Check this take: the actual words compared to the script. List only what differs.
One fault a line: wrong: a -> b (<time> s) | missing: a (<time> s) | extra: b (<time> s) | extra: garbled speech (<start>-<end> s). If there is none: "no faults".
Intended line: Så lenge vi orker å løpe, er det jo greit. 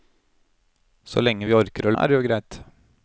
missing: løpe (1.9 s)